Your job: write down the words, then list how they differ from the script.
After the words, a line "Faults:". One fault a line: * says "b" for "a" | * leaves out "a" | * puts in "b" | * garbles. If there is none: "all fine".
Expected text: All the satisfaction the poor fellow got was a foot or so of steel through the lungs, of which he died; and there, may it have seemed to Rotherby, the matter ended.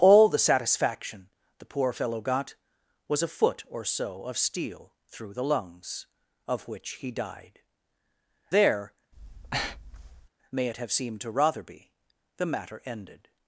All the satisfaction the poor fellow got was a foot or so of steel through the lungs, of which he died; there, may it have seemed to Rotherby, the matter ended.
Faults:
* leaves out "and"